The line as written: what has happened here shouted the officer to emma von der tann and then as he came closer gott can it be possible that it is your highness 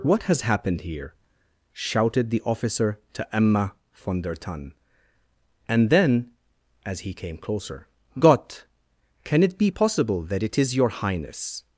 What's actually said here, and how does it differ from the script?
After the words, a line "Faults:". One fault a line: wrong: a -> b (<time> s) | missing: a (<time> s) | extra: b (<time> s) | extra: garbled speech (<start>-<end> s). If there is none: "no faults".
what has happened here shouted the officer to emma von der tann and then as he came closer gott can it be possible that it is your highness
Faults:
no faults